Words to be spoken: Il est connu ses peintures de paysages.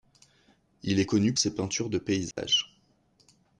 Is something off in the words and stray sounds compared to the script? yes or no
yes